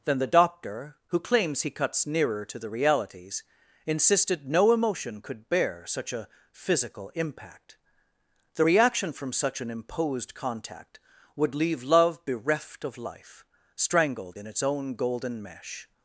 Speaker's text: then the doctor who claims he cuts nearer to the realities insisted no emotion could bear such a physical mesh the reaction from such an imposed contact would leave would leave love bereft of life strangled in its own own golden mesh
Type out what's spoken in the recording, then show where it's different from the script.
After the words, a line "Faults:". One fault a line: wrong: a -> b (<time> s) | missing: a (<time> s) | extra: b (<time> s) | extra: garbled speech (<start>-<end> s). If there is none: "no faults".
then the doctor who claims he cuts nearer to the realities insisted no emotion could bear such a physical impact the reaction from such an imposed contact would leave love bereft of life strangled in its own golden mesh
Faults:
wrong: mesh -> impact (7.1 s)
missing: would leave (11.8 s)
missing: own (15.0 s)